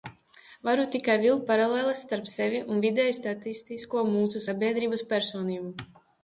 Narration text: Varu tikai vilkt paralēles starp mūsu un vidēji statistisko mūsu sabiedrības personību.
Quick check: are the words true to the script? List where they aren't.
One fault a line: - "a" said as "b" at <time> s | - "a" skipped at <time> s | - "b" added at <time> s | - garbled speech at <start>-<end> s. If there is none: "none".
- "mūsu" said as "sevi" at 2.3 s